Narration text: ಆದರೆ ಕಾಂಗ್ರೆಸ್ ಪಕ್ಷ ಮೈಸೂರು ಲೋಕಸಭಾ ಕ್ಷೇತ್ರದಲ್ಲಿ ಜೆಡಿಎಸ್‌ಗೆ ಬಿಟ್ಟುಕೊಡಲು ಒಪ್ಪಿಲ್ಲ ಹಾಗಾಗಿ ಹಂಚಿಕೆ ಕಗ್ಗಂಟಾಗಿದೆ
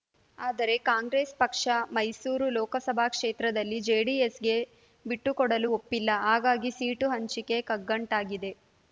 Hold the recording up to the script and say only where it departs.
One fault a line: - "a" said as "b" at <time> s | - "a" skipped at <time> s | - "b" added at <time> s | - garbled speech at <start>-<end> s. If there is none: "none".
- "ಸೀಟು" added at 6.7 s